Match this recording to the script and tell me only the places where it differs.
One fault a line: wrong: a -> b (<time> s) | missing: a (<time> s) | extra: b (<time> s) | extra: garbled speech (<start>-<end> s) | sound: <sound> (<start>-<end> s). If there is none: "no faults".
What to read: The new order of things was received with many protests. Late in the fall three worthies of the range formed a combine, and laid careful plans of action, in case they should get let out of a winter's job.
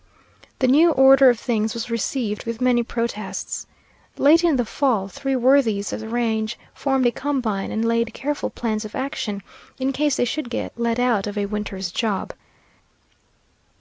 no faults